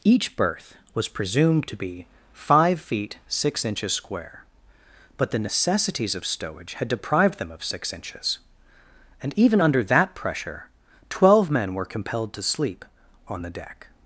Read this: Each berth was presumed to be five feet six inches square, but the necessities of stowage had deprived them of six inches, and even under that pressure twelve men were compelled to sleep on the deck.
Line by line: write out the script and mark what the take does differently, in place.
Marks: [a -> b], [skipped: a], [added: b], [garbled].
Each berth was presumed to be five feet six inches square, but the necessities of stowage had deprived them of six inches, and even under that pressure twelve men were compelled to sleep on the deck.